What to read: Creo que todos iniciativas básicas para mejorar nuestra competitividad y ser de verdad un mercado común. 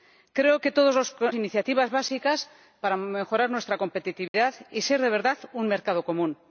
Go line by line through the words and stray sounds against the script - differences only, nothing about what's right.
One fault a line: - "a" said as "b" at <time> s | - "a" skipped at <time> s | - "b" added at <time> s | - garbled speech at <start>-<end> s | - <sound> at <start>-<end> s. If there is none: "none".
- dropout at 4.3-4.3 s